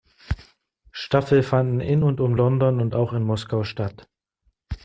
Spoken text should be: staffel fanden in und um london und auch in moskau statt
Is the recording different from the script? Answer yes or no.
no